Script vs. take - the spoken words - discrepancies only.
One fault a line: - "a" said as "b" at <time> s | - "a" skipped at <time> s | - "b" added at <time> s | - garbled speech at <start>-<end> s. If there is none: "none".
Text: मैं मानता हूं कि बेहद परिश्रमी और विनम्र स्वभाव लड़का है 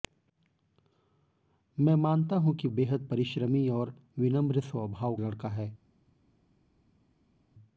none